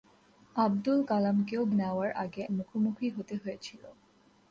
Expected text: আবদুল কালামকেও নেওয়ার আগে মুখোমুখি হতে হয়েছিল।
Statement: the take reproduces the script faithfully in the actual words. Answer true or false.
true